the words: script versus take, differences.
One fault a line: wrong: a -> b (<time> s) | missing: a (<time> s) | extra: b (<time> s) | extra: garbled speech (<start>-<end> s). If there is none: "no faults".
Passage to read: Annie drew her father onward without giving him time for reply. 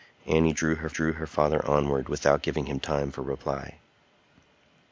extra: drew her (0.9 s)